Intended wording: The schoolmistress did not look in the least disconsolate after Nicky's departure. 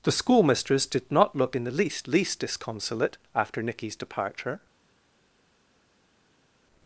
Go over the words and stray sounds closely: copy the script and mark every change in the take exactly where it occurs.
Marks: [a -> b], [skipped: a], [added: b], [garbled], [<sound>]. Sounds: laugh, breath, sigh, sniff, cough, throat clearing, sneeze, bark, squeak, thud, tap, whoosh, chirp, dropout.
The schoolmistress did not look in the least [added: least] disconsolate after Nicky's departure.